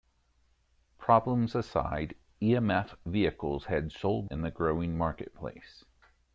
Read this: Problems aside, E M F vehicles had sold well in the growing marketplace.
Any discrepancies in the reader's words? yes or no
yes